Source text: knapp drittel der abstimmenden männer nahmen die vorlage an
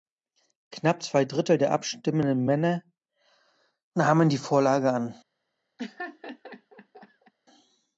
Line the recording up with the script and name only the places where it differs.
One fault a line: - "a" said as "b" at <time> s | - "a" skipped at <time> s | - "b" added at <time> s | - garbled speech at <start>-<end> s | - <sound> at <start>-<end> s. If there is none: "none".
- "zwei" added at 1.0 s
- laugh at 5.8-7.3 s